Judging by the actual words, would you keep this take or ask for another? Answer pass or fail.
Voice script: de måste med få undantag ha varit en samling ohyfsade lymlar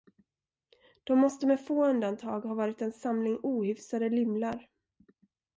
pass